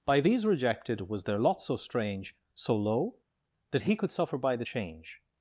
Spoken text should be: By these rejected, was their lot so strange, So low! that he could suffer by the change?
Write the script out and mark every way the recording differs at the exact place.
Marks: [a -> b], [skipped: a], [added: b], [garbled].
By these rejected, was their lot so strange, So low! that he could suffer by the change?